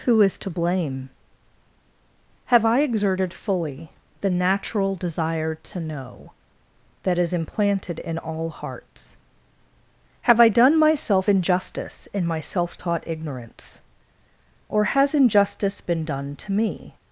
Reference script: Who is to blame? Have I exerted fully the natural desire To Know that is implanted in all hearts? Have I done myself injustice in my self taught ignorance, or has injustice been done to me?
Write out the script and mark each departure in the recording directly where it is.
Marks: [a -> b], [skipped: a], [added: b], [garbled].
Who is to blame? Have I exerted fully the natural desire To Know that is implanted in all hearts? Have I done myself injustice in my self taught ignorance, or has injustice been done to me?